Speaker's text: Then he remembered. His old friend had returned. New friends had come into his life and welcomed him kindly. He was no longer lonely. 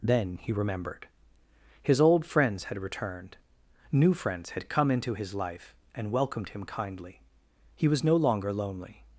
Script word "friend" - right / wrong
wrong